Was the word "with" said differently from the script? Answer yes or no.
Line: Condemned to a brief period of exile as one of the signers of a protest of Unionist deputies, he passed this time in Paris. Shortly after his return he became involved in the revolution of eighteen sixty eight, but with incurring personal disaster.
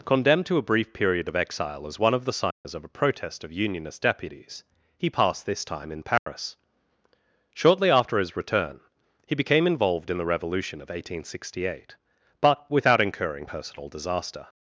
yes